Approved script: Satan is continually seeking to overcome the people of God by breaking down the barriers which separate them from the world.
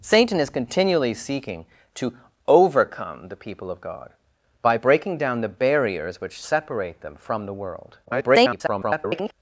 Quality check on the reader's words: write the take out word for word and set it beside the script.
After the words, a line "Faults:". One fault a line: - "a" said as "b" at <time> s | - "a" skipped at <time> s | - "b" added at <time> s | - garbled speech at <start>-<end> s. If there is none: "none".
Satan is continually seeking to overcome the people of God by breaking down the barriers which separate them from the world. [garbled]
Faults:
- garbled speech at 8.0-9.3 s